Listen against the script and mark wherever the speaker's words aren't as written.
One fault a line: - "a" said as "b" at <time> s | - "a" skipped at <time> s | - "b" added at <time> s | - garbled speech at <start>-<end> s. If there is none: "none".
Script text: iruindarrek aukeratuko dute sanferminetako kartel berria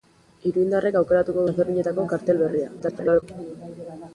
- "dute" skipped at 1.4 s
- garbled speech at 2.8-3.2 s